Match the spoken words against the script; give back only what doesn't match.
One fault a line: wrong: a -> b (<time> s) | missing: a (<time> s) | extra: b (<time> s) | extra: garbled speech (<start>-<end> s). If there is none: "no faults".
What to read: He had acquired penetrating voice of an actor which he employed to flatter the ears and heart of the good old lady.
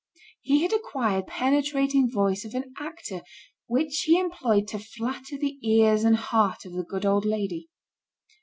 no faults